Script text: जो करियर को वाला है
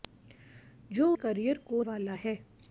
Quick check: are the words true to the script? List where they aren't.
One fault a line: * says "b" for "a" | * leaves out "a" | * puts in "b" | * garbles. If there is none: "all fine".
all fine